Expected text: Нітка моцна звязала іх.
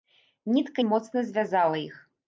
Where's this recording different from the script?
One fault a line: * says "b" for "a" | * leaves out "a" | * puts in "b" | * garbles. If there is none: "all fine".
all fine